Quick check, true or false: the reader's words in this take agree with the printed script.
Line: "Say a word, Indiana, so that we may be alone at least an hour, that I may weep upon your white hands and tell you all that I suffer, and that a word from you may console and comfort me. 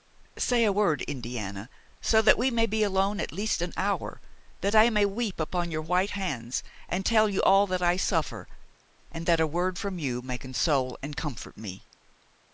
true